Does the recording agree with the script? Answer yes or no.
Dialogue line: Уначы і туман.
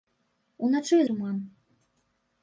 yes